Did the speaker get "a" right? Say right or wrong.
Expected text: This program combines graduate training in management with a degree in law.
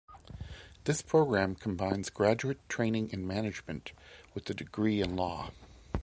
right